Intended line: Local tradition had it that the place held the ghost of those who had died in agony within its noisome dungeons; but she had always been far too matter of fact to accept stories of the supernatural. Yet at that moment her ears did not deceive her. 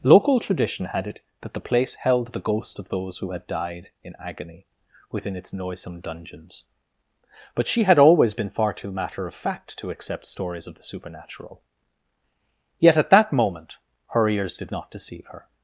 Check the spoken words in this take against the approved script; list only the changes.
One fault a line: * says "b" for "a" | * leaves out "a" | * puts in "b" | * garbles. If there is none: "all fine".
all fine